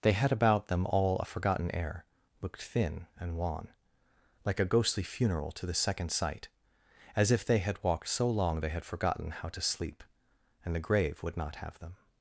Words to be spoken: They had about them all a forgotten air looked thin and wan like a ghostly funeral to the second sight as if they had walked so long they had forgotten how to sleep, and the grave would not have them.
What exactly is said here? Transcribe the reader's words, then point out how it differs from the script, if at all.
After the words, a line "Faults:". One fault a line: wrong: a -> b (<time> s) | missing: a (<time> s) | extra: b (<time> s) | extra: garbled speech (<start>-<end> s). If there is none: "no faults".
They had about them all a forgotten air looked thin and wan like a ghostly funeral to the second sight as if they had walked so long they had forgotten how to sleep, and the grave would not have them.
Faults:
no faults